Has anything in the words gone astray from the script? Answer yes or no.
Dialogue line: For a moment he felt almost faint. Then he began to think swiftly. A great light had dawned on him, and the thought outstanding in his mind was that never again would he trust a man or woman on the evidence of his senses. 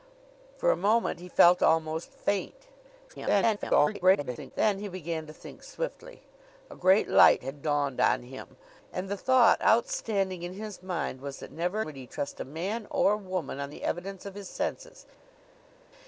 yes